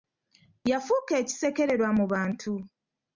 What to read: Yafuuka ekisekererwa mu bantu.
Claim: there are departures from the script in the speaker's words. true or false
false